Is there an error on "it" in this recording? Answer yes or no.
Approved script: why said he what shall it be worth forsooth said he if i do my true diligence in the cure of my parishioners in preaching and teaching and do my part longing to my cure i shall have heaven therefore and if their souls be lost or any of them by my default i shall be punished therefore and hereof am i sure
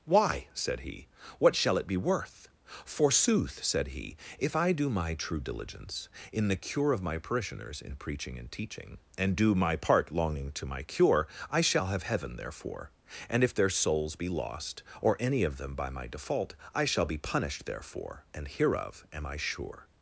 no